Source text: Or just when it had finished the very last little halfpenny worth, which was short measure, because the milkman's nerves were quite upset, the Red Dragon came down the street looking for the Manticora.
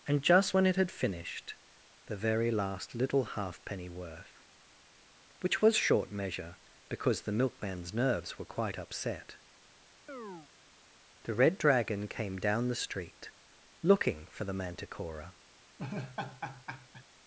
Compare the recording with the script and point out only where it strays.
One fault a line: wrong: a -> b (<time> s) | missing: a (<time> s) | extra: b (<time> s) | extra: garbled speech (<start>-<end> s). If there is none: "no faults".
wrong: Or -> And (0.1 s)